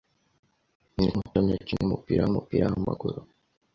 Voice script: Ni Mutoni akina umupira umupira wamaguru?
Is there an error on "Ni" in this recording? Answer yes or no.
no